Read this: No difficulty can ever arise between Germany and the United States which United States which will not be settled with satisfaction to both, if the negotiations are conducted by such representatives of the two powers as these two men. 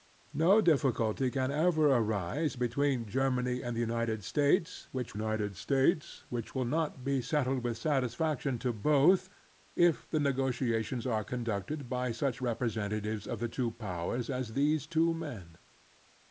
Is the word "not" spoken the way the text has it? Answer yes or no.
yes